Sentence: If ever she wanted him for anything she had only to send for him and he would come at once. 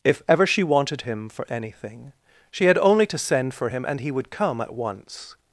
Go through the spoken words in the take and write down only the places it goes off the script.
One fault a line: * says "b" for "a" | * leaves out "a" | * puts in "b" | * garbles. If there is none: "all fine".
all fine